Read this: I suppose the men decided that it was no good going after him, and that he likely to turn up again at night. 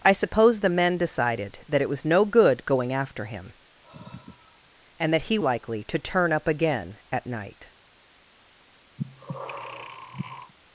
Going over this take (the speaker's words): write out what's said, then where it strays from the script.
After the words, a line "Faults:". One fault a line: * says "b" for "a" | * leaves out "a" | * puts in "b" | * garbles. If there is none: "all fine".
I suppose the men decided that it was no good going after him, and that he likely to turn up again at night.
Faults:
all fine